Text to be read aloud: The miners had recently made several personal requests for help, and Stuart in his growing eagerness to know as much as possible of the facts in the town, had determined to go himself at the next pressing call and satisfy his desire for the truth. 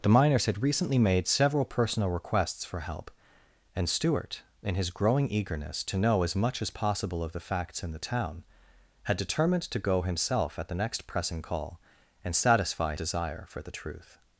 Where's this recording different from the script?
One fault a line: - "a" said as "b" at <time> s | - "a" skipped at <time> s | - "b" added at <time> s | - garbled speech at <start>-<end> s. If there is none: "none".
- "his" skipped at 12.9 s